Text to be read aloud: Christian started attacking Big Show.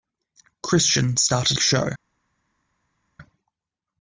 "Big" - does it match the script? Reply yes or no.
no